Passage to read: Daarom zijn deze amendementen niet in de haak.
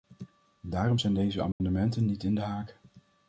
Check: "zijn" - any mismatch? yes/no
no